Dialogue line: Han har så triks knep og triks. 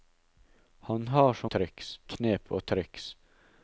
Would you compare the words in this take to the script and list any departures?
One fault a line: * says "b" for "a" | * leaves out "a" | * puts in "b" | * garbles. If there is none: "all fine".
all fine